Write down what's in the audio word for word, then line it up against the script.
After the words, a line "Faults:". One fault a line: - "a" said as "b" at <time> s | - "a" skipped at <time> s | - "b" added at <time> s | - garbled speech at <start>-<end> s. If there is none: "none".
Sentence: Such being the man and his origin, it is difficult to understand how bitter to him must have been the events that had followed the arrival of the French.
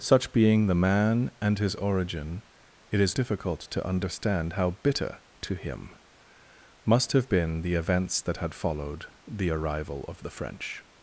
Such being the man and his origin, it is difficult to understand how bitter to him must have been the events that had followed the arrival of the French.
Faults:
none